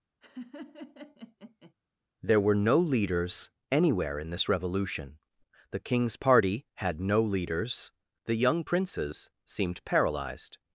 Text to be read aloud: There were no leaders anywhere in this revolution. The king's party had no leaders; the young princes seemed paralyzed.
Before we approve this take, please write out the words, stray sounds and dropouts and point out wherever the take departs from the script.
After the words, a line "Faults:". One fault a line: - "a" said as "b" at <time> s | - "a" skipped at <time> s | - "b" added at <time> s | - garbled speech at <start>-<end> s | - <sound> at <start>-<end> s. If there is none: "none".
There were no leaders anywhere in this revolution. The king's party had no leaders; the young princes seemed paralyzed.
Faults:
- laugh at 0.2-1.7 s